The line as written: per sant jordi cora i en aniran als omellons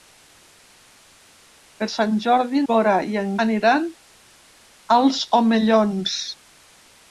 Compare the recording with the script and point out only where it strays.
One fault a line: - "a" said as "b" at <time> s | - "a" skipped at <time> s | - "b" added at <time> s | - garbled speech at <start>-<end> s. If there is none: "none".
none